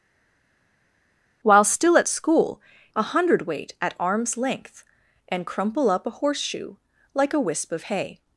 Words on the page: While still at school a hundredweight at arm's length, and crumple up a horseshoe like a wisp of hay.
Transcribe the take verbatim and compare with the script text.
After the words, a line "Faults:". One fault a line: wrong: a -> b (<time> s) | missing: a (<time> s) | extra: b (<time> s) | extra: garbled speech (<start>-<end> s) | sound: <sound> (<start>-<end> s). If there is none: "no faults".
While still at school a hundredweight at arm's length, and crumple up a horseshoe like a wisp of hay.
Faults:
no faults